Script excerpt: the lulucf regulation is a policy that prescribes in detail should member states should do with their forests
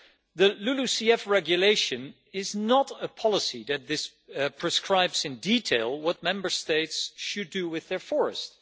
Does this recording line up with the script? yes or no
no